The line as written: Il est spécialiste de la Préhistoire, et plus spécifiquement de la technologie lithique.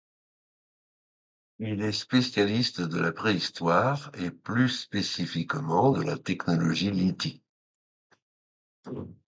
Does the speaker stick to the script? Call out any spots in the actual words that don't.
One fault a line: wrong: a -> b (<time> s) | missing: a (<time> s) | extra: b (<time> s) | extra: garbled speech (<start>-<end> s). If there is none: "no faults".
no faults